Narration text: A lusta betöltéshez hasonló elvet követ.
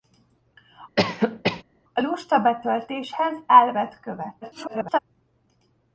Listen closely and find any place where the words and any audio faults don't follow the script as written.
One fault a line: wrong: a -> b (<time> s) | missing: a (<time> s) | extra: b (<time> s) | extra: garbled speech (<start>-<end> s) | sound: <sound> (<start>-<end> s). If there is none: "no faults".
sound: cough (1.0-1.6 s)
missing: hasonló (3.4 s)
extra: garbled speech (4.4-5.0 s)